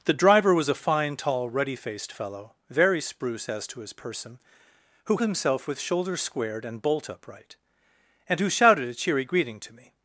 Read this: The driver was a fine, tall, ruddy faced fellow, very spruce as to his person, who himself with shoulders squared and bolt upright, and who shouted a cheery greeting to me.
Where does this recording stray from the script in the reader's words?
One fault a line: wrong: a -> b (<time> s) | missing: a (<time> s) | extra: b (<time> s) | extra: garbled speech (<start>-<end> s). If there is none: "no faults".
no faults